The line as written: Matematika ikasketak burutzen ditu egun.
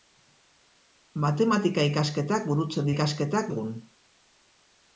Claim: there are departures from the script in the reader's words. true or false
true